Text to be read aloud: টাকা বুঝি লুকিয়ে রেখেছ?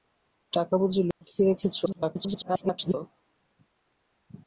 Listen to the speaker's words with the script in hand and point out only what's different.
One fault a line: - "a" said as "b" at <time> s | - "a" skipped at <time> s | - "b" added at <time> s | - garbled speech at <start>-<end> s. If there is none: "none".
- garbled speech at 1.9-2.9 s